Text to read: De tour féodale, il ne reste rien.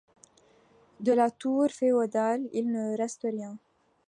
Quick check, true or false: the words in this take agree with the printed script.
false